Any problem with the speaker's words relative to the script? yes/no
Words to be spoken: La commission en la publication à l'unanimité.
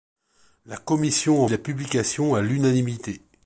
no